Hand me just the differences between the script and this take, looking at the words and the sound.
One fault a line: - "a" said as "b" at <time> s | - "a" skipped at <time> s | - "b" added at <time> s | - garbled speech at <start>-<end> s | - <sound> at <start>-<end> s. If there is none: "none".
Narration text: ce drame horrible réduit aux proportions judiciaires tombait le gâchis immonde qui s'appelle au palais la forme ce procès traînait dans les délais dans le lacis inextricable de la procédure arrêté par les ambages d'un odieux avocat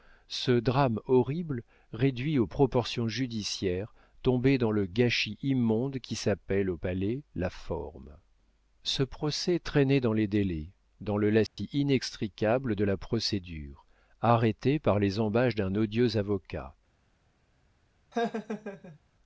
- "dans" added at 4.6 s
- dropout at 11.5-11.6 s
- laugh at 18.1-19.0 s